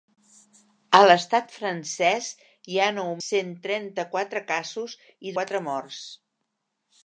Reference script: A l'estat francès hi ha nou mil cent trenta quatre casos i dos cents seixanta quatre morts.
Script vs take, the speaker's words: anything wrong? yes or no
yes